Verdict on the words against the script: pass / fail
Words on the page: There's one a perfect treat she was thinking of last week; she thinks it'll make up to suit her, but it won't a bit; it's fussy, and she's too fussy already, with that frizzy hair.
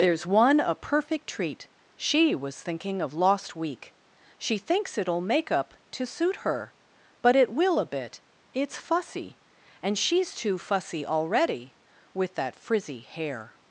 fail